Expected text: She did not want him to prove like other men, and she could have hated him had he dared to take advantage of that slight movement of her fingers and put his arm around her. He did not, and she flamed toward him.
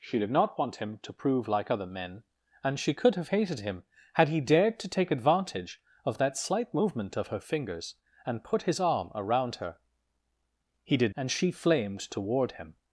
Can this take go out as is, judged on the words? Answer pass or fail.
fail